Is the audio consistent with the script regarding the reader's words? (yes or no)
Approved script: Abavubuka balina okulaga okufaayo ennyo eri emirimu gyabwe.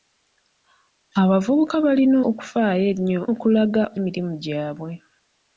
no